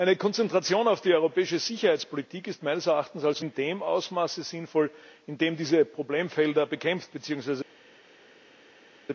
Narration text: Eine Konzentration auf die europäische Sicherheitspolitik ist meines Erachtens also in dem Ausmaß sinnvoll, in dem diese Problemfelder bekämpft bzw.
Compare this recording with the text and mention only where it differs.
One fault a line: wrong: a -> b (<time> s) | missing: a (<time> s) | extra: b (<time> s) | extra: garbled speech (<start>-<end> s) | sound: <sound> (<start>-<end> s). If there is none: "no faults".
no faults